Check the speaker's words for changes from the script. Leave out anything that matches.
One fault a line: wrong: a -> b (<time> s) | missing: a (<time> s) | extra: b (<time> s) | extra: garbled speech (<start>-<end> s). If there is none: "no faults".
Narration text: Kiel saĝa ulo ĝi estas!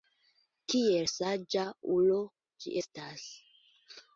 no faults